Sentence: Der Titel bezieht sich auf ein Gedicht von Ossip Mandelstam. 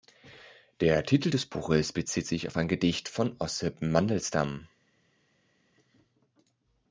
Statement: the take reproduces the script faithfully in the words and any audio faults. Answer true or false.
false